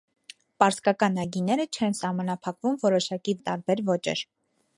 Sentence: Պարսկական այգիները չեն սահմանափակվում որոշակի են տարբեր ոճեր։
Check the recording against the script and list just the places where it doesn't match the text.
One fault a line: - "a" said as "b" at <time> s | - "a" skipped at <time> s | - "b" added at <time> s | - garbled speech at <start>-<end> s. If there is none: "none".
none